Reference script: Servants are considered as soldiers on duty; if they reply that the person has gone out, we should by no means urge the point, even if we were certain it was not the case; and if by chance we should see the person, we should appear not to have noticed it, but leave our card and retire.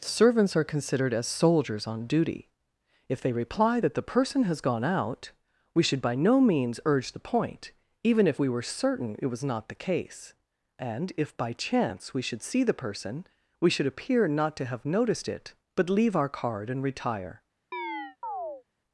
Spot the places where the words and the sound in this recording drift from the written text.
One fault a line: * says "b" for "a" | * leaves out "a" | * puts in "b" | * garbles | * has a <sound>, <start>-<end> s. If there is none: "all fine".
* has a chirp, 17.7-18.6 s